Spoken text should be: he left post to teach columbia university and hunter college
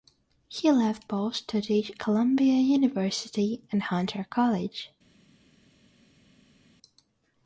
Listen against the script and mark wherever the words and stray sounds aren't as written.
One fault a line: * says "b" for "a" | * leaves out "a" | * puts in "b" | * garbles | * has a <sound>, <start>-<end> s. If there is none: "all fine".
all fine